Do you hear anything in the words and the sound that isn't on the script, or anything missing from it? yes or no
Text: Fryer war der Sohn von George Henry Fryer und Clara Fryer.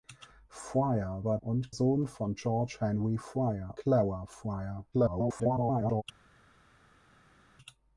yes